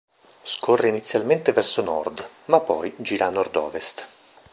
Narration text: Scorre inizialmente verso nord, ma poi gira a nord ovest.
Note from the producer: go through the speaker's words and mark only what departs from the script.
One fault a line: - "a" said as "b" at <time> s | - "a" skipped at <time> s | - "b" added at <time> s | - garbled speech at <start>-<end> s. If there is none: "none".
none